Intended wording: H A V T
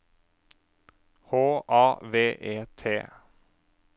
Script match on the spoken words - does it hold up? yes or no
no